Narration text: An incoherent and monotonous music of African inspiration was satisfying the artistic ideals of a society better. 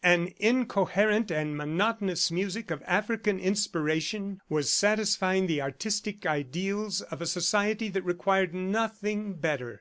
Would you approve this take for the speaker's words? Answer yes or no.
no